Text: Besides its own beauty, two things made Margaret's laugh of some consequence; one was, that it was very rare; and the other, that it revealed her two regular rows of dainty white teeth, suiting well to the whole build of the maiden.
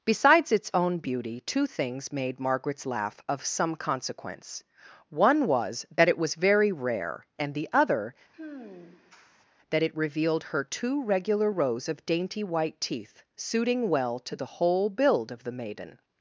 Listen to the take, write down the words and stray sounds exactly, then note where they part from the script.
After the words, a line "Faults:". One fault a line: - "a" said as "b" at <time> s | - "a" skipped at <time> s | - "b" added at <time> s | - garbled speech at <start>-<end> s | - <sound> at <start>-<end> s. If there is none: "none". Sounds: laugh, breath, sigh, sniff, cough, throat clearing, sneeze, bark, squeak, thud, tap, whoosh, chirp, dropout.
Besides its own beauty, two things made Margaret's laugh of some consequence; one was, that it was very rare; and the other, that it revealed her two regular rows of dainty white teeth, suiting well to the whole build of the maiden.
Faults:
- sigh at 8.3-9.5 s